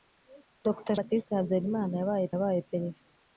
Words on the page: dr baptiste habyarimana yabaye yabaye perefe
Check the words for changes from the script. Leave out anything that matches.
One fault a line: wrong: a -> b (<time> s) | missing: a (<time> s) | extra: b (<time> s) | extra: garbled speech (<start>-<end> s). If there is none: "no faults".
no faults